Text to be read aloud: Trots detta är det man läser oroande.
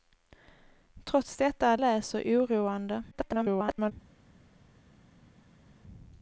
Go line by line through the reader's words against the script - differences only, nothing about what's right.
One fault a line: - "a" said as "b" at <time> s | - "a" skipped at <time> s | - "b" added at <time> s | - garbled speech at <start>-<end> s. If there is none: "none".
- "det man" skipped at 1.8 s
- garbled speech at 3.1-3.9 s